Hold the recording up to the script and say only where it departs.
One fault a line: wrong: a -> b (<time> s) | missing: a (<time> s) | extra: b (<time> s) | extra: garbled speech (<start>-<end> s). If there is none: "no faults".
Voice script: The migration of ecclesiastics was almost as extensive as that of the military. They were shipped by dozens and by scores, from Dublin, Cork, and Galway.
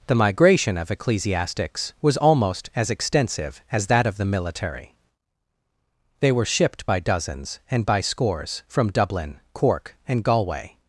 no faults